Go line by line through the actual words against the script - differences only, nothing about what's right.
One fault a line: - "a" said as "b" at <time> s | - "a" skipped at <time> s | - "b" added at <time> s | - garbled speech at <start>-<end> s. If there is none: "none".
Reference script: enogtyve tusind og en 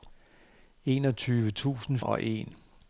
none